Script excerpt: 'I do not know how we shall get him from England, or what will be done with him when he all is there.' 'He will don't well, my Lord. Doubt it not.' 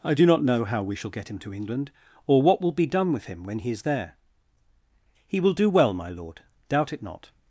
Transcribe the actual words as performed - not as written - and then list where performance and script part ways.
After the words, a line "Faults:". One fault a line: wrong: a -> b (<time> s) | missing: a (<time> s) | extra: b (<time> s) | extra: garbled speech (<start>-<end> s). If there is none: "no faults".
'I do not know how we shall get him to England, or what will be done with him when he is there.' 'He will do well, my Lord. Doubt it not.'
Faults:
wrong: from -> to (1.4 s)
missing: all (3.7 s)
wrong: don't -> do (5.5 s)